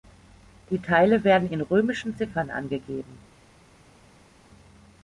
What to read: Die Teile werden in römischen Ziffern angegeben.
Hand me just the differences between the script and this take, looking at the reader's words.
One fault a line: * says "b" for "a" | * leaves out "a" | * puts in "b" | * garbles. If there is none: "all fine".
all fine